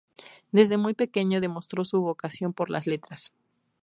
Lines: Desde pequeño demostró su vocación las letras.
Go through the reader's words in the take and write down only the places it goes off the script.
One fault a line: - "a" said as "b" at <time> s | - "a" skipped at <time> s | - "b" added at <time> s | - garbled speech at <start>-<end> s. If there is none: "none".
- "muy" added at 0.8 s
- "por" added at 2.5 s